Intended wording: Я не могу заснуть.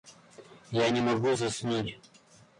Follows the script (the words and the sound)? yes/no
yes